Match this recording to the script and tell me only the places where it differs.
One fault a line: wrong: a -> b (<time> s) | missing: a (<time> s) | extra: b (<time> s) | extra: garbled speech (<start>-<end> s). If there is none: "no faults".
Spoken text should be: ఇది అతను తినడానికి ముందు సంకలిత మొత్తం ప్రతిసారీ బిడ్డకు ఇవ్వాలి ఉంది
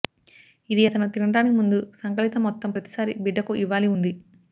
no faults